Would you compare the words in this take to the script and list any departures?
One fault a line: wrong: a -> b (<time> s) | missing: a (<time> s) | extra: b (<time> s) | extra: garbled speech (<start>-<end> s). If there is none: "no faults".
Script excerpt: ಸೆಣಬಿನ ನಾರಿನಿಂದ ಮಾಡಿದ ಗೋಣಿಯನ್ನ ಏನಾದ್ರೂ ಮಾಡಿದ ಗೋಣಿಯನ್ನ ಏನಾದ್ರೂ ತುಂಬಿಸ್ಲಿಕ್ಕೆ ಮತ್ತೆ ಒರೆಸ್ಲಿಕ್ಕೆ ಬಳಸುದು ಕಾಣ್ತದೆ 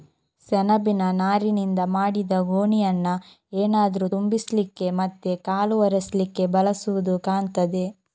missing: ಮಾಡಿದ ಗೋಣಿಯನ್ನ ಏನಾದ್ರೂ (4.1 s)
extra: ಕಾಲು (5.4 s)